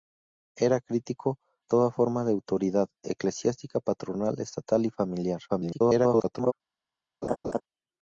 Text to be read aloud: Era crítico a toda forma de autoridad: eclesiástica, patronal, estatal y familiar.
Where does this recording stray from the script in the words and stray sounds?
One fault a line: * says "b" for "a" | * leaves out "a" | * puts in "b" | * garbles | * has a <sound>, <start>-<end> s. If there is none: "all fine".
* leaves out "a"
* garbles
* has a laugh, 7.2-7.6 s